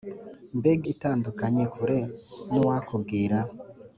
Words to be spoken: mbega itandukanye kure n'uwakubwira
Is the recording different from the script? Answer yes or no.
no